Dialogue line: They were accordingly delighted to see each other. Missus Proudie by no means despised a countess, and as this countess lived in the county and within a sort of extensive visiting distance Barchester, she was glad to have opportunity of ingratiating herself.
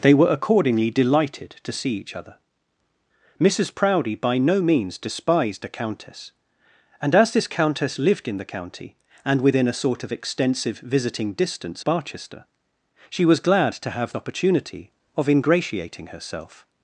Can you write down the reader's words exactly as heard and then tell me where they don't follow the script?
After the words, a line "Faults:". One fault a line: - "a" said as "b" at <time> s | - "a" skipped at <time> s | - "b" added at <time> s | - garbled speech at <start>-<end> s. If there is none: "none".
They were accordingly delighted to see each other. Missus Proudie by no means despised a countess, and as this countess lived in the county and within a sort of extensive visiting distance Barchester, she was glad to have opportunity of ingratiating herself.
Faults:
none